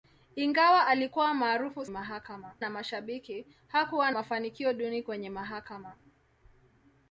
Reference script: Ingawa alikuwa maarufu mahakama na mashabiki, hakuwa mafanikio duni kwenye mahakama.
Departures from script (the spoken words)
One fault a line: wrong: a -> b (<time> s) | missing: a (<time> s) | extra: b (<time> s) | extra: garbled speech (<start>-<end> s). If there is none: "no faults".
no faults